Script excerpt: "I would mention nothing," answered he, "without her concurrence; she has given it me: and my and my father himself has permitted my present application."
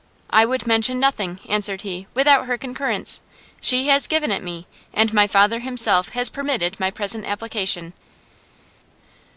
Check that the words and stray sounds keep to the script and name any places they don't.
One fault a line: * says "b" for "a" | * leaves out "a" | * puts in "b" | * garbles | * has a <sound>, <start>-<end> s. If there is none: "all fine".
* leaves out "and my"